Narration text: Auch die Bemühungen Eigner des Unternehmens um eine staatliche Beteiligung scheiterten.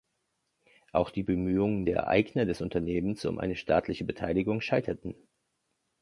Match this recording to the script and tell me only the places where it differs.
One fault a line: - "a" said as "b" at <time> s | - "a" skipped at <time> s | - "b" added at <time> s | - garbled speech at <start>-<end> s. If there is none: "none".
- "der" added at 1.8 s